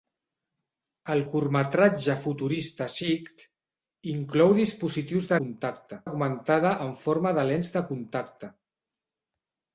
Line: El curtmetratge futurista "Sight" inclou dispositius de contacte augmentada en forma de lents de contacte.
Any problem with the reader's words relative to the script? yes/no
no